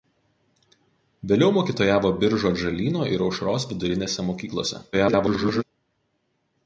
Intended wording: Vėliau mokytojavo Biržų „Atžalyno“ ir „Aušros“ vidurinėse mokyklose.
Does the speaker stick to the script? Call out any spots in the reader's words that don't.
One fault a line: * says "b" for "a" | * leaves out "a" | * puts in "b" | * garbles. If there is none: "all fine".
* garbles